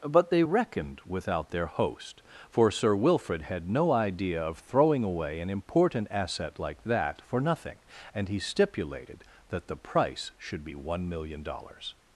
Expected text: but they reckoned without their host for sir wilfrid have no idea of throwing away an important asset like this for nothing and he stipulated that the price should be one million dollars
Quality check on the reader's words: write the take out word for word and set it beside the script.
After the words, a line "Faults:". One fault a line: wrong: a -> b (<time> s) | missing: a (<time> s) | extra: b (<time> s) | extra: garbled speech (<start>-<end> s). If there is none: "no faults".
but they reckoned without their host for sir wilfrid had no idea of throwing away an important asset like that for nothing and he stipulated that the price should be one million dollars
Faults:
wrong: have -> had (3.4 s)
wrong: this -> that (6.8 s)